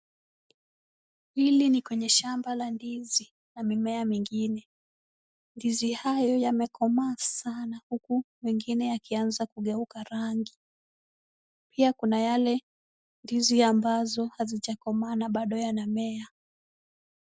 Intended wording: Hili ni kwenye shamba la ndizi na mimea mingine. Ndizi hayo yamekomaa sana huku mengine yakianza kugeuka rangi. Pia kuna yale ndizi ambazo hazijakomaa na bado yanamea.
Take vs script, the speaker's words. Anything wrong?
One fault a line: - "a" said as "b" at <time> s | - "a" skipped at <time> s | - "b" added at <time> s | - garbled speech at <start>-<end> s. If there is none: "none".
none